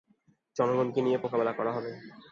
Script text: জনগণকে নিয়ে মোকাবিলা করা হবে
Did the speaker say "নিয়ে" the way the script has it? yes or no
yes